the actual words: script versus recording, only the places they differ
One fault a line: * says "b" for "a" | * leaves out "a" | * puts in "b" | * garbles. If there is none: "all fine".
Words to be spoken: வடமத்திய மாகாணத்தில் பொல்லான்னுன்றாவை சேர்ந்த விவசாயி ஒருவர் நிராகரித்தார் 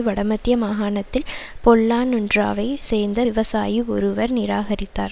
all fine